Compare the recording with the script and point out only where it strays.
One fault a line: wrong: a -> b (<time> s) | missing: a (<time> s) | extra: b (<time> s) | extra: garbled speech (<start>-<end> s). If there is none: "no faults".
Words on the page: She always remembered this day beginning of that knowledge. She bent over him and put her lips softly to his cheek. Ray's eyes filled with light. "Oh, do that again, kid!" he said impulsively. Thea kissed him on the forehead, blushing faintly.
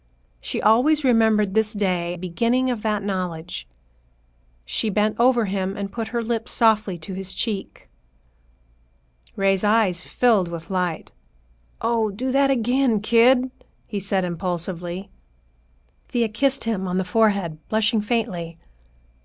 no faults